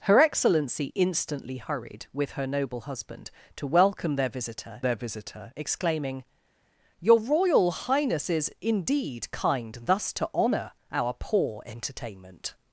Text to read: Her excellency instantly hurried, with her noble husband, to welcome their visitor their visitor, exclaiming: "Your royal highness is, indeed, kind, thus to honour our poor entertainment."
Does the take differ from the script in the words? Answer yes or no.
no